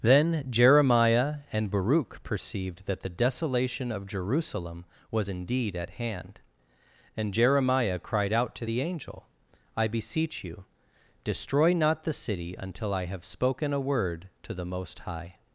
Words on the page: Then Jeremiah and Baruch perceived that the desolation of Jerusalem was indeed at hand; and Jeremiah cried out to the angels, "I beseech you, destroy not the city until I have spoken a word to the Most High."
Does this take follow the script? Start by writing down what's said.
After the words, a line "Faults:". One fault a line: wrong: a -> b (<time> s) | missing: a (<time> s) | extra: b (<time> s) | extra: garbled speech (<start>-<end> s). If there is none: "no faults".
Then Jeremiah and Baruch perceived that the desolation of Jerusalem was indeed at hand; and Jeremiah cried out to the angel, "I beseech you, destroy not the city until I have spoken a word to the Most High."
Faults:
wrong: angels -> angel (8.8 s)